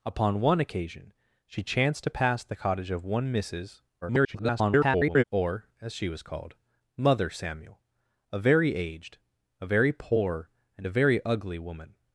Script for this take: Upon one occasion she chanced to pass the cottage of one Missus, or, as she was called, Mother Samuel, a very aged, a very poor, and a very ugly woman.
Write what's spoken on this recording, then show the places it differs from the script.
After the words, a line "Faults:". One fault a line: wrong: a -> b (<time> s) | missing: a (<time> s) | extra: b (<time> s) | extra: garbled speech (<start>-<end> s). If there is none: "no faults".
Upon one occasion she chanced to pass the cottage of one Missus, [garbled] or, as she was called, Mother Samuel, a very aged, a very poor, and a very ugly woman.
Faults:
extra: garbled speech (4.0-5.2 s)